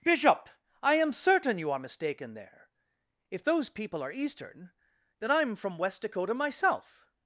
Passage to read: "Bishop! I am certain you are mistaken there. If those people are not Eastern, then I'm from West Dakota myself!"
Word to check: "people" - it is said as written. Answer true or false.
true